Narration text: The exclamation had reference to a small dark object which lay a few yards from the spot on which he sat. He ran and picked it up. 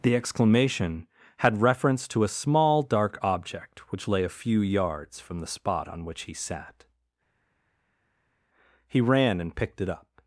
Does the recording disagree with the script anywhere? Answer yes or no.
no